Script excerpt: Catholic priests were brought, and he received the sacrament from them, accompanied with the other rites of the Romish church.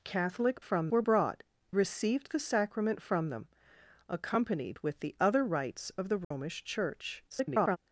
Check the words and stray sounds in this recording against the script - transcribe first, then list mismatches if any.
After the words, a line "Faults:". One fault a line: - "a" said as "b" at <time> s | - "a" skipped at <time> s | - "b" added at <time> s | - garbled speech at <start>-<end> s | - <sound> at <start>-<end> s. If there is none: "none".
Catholic from were brought, received the sacrament from them, accompanied with the other rites of the Romish church. [garbled]
Faults:
- "priests" said as "from" at 0.6 s
- "and he" skipped at 1.4 s
- dropout at 6.2-6.3 s
- garbled speech at 7.3-7.8 s